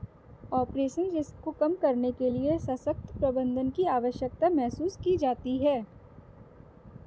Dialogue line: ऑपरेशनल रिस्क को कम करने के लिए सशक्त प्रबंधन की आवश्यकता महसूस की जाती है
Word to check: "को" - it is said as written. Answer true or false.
true